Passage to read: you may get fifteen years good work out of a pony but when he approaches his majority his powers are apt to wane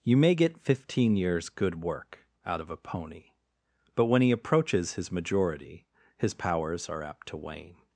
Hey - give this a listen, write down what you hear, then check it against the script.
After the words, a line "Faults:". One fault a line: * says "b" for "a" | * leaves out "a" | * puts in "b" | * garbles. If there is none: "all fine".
you may get fifteen years good work out of a pony but when he approaches his majority his powers are apt to wane
Faults:
all fine